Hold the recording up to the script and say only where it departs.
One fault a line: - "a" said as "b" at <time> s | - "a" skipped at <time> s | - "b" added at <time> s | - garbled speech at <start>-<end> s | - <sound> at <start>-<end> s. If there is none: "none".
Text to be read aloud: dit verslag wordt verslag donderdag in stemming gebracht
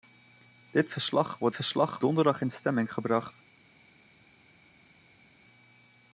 none